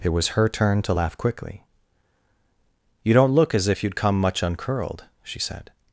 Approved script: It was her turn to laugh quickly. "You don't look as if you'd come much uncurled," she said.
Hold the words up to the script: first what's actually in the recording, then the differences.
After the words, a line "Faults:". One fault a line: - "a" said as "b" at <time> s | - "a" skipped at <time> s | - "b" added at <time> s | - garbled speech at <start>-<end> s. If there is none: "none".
It was her turn to laugh quickly. "You don't look as if you'd come much uncurled," she said.
Faults:
none